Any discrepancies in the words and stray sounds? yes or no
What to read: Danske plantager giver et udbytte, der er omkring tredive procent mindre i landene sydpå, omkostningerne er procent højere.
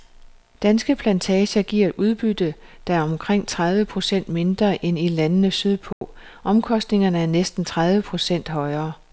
yes